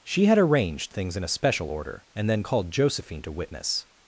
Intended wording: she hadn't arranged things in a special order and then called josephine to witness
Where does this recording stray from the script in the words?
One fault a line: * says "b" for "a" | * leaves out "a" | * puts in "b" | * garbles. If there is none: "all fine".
* says "had" for "hadn't"